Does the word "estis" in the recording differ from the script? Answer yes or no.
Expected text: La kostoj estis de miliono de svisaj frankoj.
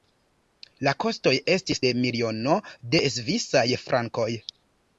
no